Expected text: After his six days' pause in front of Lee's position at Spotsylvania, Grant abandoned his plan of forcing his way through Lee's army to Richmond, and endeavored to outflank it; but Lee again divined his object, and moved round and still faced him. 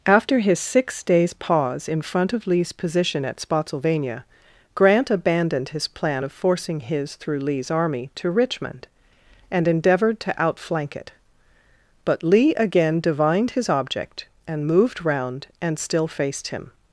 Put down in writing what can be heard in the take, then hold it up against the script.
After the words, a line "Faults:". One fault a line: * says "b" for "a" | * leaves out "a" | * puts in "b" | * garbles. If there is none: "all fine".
After his six days' pause in front of Lee's position at Spotsylvania, Grant abandoned his plan of forcing his through Lee's army to Richmond, and endeavored to outflank it; but Lee again divined his object, and moved round and still faced him.
Faults:
* leaves out "way"